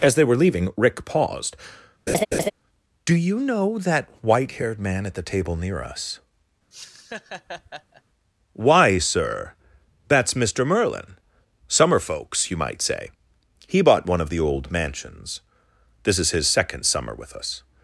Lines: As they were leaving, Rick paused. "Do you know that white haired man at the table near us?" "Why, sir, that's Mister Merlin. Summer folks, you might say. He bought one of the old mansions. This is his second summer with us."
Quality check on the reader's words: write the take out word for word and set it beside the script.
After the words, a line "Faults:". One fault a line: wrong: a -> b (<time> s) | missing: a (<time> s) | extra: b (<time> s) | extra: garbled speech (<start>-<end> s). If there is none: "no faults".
As they were leaving, Rick paused. "Do you know that white haired man at the table near us?" "Why, sir, that's Mister Merlin. Summer folks, you might say. He bought one of the old mansions. This is his second summer with us."
Faults:
no faults